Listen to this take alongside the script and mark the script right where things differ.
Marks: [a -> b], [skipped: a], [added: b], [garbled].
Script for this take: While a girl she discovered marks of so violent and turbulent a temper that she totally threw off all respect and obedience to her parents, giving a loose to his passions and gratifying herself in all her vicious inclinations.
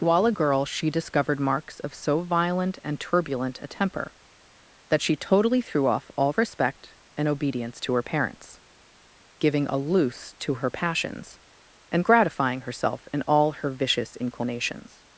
While a girl she discovered marks of so violent and turbulent a temper that she totally threw off all respect and obedience to her parents, giving a loose to [his -> her] passions and gratifying herself in all her vicious inclinations.